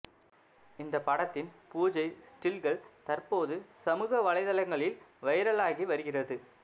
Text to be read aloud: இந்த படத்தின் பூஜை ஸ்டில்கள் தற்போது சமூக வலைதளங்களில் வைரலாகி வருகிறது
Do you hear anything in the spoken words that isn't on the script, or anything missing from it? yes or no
no